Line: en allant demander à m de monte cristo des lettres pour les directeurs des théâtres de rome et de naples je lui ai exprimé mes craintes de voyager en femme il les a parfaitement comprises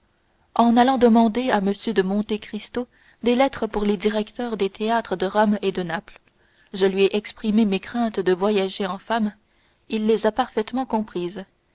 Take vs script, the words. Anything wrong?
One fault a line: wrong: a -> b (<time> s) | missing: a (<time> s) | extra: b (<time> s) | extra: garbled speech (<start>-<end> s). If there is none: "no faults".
no faults